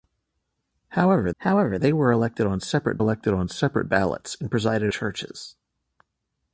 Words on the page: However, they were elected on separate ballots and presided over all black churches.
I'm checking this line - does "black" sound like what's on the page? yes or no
no